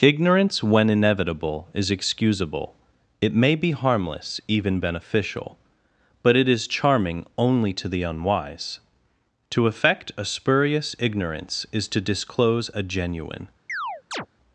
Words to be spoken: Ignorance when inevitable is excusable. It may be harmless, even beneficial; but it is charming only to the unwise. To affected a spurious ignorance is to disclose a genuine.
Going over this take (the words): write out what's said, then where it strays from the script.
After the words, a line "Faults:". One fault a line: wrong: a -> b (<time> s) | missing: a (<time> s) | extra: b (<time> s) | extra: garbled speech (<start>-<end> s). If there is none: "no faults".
Ignorance when inevitable is excusable. It may be harmless, even beneficial; but it is charming only to the unwise. To affect a spurious ignorance is to disclose a genuine.
Faults:
wrong: affected -> affect (9.7 s)